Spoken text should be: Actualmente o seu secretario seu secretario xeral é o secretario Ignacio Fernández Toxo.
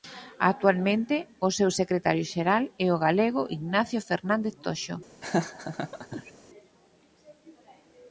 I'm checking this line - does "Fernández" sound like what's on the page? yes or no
yes